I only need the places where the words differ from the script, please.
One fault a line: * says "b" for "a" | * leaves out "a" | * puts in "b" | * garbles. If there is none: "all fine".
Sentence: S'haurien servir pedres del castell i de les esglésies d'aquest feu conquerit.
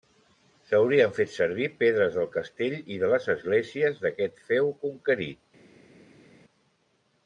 * puts in "fet"